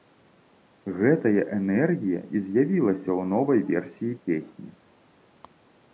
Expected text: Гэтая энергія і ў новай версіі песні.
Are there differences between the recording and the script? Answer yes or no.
yes